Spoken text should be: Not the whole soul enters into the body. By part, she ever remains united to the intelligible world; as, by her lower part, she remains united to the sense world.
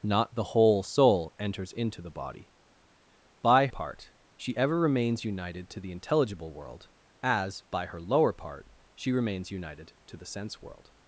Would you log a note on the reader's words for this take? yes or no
no